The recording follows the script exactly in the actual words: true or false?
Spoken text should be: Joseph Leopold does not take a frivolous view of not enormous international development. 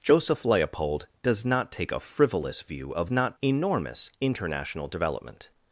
true